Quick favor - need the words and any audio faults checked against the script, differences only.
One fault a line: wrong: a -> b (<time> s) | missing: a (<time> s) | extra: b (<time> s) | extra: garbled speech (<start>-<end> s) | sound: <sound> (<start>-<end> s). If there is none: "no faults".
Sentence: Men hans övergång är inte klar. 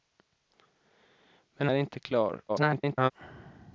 missing: hans övergång (1.7 s)
extra: garbled speech (2.5-3.1 s)